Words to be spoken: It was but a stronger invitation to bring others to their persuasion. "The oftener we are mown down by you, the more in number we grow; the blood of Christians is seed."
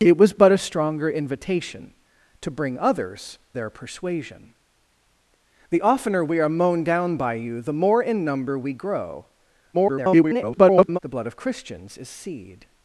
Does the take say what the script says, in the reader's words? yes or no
no